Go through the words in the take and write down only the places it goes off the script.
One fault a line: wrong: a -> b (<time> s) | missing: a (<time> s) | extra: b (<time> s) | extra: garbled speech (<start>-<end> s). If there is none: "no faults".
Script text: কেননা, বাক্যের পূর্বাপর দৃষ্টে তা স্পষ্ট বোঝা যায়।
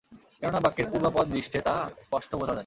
no faults